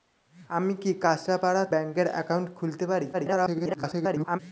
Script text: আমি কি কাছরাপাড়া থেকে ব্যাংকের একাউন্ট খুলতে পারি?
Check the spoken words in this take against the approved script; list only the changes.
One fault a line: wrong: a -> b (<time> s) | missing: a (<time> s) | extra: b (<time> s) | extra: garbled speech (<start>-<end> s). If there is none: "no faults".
missing: থেকে (1.6 s)
extra: garbled speech (3.1-4.4 s)